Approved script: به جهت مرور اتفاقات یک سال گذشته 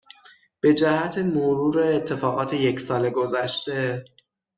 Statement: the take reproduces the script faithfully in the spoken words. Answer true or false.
true